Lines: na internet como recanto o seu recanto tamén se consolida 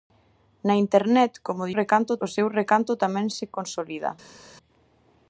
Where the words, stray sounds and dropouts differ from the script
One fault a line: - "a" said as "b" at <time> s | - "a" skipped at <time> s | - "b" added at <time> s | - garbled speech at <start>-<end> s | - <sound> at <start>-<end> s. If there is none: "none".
none